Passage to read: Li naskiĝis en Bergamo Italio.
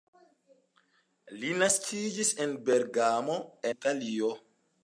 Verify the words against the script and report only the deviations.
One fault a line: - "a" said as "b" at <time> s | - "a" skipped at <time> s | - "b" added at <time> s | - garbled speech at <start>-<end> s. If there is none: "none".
none